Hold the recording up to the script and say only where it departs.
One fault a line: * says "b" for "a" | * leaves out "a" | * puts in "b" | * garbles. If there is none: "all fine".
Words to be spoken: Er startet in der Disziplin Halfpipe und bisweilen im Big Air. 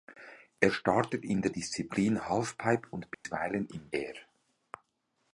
* leaves out "Big"